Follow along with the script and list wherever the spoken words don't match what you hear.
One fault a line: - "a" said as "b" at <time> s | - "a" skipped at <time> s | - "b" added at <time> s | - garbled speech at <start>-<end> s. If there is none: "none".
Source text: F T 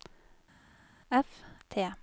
none